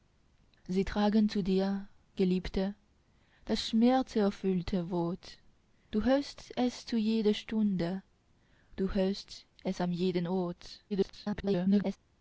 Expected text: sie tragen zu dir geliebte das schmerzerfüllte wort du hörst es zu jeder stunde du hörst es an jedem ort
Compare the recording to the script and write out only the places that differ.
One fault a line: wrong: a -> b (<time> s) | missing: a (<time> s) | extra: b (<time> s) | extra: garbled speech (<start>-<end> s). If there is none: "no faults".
extra: garbled speech (10.9-12.0 s)